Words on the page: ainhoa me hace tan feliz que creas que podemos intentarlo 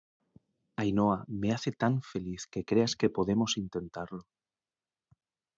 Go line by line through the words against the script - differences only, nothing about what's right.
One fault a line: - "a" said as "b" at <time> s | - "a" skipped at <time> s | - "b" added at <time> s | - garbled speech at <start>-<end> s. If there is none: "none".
none